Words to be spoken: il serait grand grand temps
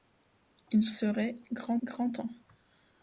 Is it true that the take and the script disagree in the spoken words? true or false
false